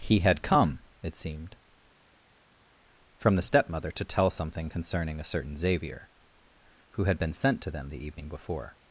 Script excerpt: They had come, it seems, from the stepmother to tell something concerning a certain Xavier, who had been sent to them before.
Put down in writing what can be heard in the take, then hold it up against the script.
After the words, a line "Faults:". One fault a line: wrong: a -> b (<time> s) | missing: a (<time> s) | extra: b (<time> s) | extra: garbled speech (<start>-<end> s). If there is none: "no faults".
He had come, it seemed, from the stepmother to tell something concerning a certain Xavier, who had been sent to them the evening before.
Faults:
wrong: They -> He (0.0 s)
wrong: seems -> seemed (1.1 s)
extra: the evening (7.9 s)